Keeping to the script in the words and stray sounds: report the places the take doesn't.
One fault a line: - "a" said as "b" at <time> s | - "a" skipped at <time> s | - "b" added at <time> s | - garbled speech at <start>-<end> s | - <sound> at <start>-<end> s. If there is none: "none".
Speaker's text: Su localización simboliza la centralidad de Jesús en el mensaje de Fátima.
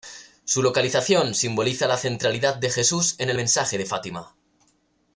none